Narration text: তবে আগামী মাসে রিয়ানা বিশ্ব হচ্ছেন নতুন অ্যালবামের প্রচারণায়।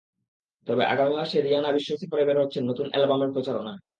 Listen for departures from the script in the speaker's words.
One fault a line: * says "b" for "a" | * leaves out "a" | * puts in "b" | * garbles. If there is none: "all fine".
* puts in "সফরে বের"